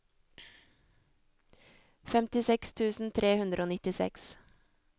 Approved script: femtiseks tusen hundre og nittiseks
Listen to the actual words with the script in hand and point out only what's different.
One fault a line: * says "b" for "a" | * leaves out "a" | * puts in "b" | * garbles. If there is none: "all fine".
* puts in "tre"